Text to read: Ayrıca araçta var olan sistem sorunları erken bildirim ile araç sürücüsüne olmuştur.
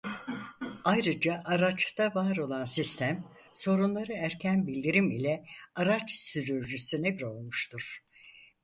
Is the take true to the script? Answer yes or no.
yes